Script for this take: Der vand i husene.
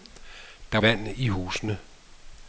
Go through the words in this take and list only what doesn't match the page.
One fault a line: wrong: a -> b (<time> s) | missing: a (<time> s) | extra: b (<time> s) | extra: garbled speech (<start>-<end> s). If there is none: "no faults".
no faults